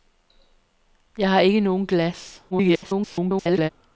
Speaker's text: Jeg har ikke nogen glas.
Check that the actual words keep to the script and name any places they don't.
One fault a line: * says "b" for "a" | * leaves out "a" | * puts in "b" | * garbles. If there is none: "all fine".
* garbles